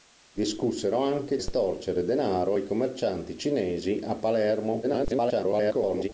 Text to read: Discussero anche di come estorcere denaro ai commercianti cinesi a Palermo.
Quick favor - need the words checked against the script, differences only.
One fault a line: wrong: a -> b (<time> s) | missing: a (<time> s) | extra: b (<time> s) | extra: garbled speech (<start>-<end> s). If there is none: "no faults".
missing: di come (1.4 s)
extra: garbled speech (4.8-6.1 s)